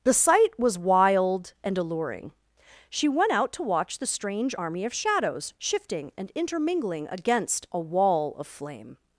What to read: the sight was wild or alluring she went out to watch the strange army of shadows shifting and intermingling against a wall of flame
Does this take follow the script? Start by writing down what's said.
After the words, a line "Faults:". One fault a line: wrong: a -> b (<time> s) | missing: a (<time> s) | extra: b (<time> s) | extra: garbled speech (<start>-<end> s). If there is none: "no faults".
the sight was wild and alluring she went out to watch the strange army of shadows shifting and intermingling against a wall of flame
Faults:
wrong: or -> and (1.6 s)